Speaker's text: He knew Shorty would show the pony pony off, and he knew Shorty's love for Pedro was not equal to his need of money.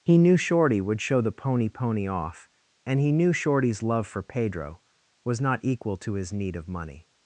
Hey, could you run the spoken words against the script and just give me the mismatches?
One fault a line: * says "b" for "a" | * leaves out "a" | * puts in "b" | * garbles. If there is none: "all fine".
all fine